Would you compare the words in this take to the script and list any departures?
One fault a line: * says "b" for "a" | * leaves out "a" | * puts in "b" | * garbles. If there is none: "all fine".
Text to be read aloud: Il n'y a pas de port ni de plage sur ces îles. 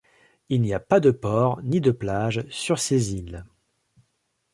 all fine